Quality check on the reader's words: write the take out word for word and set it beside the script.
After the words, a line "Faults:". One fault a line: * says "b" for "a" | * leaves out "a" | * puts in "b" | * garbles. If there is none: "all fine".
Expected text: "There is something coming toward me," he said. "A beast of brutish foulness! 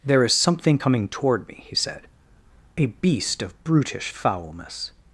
"There is something coming toward me," he said. "A beast of brutish foulness!
Faults:
all fine